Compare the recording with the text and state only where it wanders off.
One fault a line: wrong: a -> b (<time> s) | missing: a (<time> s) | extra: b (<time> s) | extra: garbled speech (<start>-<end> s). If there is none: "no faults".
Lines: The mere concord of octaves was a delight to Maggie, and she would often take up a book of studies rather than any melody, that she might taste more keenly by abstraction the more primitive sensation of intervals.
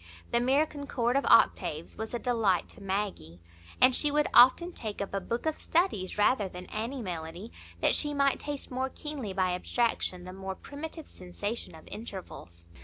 no faults